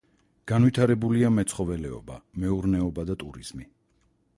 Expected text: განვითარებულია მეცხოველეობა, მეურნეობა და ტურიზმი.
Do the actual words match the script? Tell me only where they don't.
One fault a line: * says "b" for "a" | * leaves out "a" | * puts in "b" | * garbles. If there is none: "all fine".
all fine